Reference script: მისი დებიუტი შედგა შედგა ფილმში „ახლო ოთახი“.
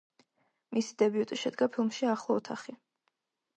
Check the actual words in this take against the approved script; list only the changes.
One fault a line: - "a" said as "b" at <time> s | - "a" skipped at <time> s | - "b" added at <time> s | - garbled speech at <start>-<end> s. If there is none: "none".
- "შედგა" skipped at 1.7 s